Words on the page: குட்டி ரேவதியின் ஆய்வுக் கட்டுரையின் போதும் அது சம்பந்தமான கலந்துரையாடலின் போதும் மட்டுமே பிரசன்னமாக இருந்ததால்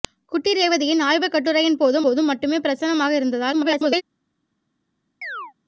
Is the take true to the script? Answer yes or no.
no